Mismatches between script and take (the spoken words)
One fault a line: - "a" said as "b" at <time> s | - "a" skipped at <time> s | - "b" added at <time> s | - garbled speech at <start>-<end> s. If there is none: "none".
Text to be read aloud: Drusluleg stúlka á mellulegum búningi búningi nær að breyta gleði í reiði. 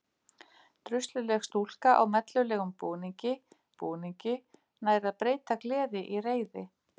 none